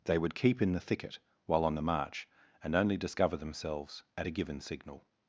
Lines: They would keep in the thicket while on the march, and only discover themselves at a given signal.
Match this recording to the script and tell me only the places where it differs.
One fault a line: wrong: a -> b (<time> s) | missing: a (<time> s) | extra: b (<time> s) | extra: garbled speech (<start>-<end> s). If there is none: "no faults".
no faults